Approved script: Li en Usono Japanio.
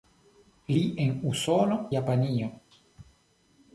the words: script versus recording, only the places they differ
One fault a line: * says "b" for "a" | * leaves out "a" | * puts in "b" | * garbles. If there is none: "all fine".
all fine